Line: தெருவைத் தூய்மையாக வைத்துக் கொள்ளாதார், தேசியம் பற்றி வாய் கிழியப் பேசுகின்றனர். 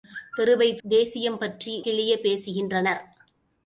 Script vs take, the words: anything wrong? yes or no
yes